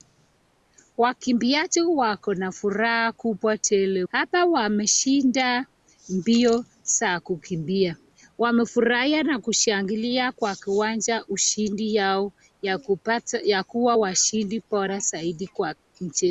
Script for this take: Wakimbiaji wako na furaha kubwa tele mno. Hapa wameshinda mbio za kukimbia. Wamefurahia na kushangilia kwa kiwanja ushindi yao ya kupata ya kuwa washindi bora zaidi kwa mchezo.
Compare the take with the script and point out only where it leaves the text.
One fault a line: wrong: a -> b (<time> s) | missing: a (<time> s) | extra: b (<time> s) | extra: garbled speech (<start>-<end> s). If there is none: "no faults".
missing: mno (4.0 s)